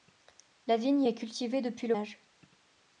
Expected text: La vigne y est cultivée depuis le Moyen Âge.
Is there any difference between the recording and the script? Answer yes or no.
yes